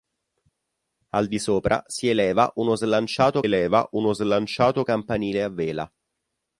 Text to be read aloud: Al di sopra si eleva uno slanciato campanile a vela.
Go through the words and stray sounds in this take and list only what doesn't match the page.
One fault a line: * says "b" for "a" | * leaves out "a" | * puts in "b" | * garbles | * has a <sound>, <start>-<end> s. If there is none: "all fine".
* puts in "eleva uno slanciato"